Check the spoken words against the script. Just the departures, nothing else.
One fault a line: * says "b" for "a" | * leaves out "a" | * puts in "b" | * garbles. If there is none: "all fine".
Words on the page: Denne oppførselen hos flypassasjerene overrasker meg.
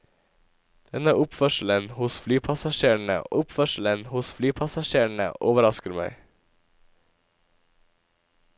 * puts in "oppførselen hos flypassasjerene"